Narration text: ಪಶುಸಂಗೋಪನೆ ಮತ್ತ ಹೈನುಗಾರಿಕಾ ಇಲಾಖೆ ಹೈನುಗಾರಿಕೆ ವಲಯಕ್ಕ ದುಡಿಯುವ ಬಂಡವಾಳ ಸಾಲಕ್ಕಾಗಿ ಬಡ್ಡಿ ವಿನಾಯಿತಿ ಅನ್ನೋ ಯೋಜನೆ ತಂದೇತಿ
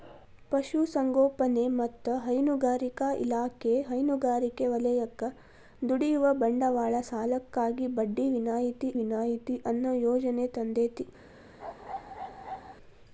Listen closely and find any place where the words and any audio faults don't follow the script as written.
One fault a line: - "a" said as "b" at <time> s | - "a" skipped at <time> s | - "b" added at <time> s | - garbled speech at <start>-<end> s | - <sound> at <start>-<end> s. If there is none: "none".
- "ವಿನಾಯಿತಿ" added at 9.0 s
- bark at 11.6-12.8 s